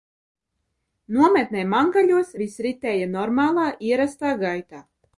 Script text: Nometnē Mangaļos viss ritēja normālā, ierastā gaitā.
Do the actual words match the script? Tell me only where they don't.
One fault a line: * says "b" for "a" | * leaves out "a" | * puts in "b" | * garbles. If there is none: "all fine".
all fine